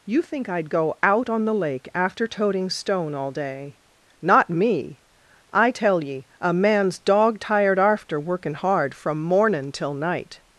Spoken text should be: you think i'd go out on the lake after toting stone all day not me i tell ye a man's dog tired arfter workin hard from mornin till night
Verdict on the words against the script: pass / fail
pass